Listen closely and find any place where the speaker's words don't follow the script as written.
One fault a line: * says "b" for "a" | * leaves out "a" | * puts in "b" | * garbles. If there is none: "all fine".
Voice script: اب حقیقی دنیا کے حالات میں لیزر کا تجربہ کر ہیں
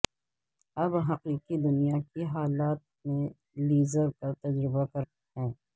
all fine